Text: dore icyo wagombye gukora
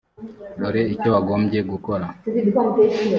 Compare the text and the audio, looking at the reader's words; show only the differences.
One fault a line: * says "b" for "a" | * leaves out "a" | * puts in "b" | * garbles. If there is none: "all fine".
all fine